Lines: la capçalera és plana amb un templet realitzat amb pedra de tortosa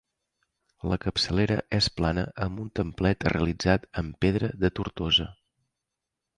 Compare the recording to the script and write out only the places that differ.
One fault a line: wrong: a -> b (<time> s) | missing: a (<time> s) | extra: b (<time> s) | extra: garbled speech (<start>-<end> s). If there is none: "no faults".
no faults